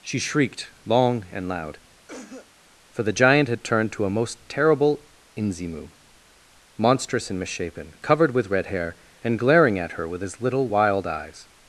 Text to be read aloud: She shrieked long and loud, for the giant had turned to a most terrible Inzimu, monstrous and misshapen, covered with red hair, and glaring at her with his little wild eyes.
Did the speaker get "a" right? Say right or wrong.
right